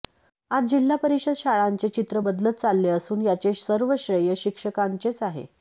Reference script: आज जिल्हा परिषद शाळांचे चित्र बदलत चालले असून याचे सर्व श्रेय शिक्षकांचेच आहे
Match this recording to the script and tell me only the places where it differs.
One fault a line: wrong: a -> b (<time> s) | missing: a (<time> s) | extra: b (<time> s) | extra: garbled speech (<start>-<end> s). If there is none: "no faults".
no faults